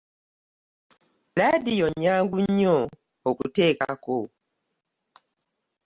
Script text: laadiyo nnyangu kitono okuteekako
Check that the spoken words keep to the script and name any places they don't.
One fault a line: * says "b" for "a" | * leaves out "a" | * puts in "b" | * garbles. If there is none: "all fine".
* says "nnyo" for "kitono"